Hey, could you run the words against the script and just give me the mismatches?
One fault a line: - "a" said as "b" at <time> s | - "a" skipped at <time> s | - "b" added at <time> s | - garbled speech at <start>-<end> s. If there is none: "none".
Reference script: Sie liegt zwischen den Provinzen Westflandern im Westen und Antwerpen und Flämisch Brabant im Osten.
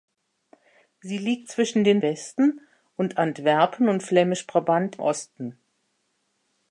- "Provinzen Westflandern im" skipped at 2.0 s
- "im" skipped at 5.0 s